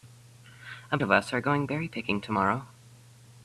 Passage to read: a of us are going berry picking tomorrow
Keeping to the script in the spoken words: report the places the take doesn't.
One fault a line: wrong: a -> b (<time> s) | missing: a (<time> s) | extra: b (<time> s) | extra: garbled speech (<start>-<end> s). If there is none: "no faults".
no faults